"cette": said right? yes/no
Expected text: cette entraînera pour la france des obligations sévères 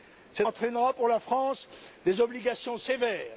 yes